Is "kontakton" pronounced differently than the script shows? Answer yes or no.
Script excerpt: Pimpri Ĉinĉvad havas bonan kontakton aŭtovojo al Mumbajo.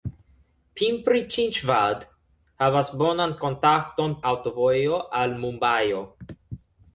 no